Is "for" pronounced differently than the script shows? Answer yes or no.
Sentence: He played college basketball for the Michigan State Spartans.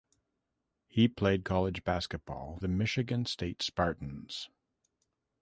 yes